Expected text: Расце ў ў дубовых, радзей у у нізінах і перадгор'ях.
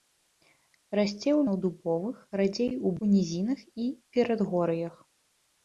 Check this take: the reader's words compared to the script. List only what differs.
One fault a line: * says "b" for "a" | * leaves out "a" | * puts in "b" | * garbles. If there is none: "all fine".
all fine